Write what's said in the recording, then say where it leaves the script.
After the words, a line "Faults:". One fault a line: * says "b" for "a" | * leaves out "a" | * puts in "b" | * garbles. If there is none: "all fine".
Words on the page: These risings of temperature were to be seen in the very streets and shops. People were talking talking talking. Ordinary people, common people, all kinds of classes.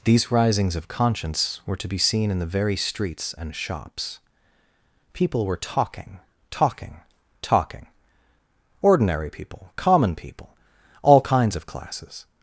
These risings of conscience were to be seen in the very streets and shops. People were talking talking talking. Ordinary people, common people, all kinds of classes.
Faults:
* says "conscience" for "temperature"